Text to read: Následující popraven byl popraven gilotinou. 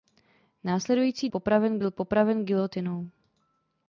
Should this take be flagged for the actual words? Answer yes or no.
no